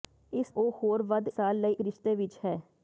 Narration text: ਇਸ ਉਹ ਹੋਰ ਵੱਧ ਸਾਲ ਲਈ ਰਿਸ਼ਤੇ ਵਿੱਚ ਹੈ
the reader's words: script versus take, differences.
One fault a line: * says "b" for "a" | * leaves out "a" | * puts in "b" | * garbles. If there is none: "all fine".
all fine